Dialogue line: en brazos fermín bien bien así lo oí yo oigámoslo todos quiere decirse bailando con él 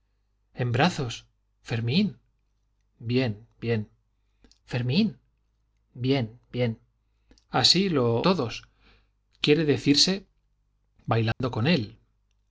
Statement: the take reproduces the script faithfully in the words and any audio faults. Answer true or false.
false